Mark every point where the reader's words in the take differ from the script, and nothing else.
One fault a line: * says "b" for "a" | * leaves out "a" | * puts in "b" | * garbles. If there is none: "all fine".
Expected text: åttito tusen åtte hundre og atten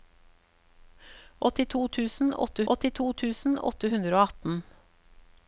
* puts in "åttito tusen åtte"